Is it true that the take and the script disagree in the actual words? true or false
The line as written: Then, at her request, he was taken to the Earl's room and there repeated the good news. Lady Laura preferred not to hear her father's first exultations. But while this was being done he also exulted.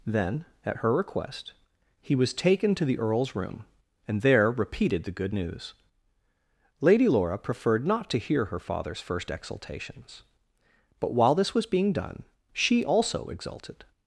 true